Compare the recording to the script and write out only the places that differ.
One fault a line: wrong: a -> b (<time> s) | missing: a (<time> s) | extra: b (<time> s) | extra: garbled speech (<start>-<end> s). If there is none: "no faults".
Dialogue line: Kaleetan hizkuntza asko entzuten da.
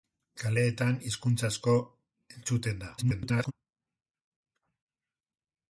extra: garbled speech (3.0-3.5 s)